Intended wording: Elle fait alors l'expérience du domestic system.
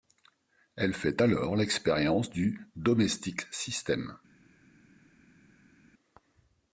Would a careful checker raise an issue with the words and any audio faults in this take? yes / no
no